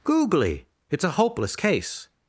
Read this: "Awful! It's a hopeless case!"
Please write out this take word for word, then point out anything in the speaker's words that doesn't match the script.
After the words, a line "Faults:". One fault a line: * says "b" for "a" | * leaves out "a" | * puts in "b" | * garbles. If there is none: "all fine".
"Googly! It's a hopeless case!"
Faults:
* says "Googly" for "Awful"